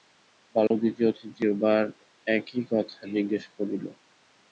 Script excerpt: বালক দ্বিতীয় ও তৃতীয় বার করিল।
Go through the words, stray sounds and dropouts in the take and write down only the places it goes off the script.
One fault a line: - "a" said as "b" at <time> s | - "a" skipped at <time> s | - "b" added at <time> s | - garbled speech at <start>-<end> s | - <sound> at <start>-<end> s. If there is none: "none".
- dropout at 0.7-0.7 s
- "একই কথা জিজ্ঞাসা" added at 2.3 s